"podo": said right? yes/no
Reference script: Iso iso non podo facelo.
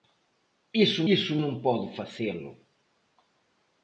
yes